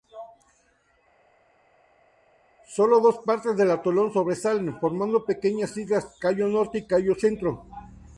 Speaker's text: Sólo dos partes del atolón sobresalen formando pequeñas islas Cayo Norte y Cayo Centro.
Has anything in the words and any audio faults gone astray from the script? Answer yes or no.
no